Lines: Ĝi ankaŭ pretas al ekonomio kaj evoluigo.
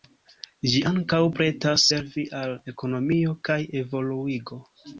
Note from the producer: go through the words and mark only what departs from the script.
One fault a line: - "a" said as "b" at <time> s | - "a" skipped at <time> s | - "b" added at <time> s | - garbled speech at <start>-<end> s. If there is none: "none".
- "servi" added at 1.9 s